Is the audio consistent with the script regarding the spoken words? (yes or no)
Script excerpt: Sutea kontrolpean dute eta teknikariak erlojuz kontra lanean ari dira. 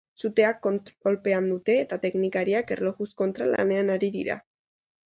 yes